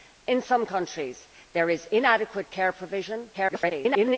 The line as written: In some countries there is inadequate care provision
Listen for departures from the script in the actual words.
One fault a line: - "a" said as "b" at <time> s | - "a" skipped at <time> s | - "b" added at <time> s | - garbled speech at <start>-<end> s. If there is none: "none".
- garbled speech at 3.3-4.2 s